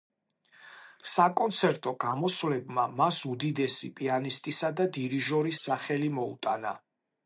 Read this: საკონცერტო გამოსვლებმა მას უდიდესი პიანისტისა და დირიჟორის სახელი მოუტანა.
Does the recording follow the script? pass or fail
pass